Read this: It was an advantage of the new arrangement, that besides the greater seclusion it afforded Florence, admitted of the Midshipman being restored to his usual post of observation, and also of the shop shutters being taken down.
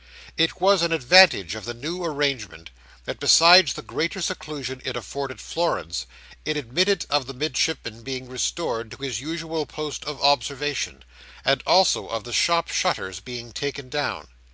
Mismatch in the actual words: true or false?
true